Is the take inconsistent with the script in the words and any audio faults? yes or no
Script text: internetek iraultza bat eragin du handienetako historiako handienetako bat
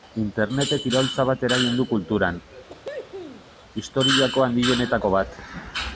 yes